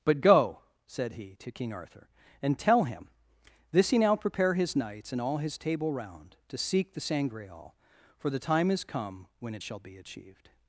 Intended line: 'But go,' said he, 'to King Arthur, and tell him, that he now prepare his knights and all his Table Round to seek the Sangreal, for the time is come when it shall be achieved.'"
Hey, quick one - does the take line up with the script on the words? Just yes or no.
no